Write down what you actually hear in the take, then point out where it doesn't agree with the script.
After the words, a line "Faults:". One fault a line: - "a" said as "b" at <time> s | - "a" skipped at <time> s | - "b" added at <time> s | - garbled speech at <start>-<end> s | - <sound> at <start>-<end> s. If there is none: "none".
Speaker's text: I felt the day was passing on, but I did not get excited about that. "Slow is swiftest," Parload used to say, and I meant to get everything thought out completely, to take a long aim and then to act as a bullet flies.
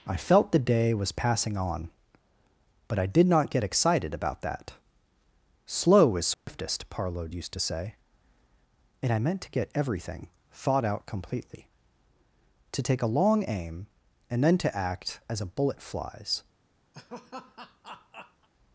I felt the day was passing on, but I did not get excited about that. "Slow is swiftest," Parload used to say, and I meant to get everything thought out completely, to take a long aim and then to act as a bullet flies.
Faults:
- dropout at 6.3-6.5 s
- laugh at 16.9-18.5 s